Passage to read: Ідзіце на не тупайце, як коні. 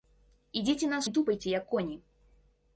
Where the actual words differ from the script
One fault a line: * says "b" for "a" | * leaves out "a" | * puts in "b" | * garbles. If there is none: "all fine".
all fine